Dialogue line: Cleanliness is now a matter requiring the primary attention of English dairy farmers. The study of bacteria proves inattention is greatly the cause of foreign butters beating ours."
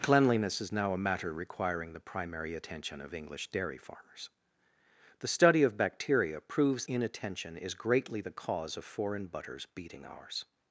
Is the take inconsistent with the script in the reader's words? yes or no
no